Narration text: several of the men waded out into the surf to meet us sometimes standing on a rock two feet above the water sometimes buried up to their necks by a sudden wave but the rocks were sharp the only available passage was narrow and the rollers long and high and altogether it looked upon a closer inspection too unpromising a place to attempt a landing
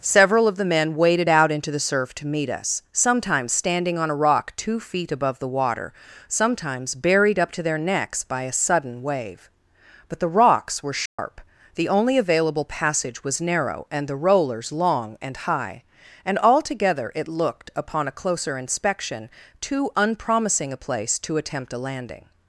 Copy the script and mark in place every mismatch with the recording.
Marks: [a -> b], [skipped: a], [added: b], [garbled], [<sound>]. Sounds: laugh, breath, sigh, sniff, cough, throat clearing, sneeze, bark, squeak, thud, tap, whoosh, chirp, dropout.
several of the men waded out into the surf to meet us sometimes standing on a rock two feet above the water sometimes buried up to their necks by a sudden wave but the rocks were sharp [dropout] the only available passage was narrow and the rollers long and high and altogether it looked upon a closer inspection too unpromising a place to attempt a landing